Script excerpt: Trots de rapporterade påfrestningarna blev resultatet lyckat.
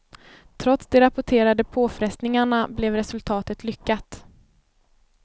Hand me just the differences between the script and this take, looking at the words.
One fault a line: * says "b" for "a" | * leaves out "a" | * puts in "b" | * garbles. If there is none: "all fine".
all fine